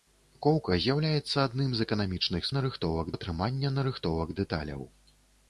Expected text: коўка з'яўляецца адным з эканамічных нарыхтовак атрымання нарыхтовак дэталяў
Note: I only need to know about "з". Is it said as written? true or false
true